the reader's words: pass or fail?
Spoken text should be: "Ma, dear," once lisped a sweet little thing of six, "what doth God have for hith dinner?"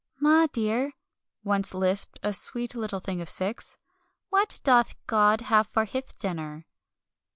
pass